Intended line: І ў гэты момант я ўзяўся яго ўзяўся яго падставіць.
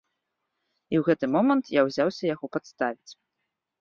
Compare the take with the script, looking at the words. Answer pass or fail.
fail